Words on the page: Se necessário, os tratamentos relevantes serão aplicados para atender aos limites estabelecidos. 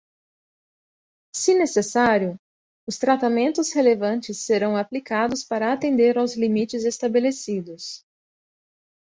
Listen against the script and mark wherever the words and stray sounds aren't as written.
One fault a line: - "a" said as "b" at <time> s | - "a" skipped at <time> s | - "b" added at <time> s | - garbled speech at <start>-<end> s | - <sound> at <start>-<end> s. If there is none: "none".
none